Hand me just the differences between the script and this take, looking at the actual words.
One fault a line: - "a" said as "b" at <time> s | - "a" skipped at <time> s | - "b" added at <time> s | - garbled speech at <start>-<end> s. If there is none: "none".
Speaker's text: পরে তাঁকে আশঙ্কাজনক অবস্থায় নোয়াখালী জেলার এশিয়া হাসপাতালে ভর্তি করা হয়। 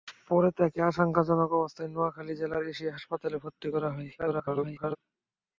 - garbled speech at 4.2-5.0 s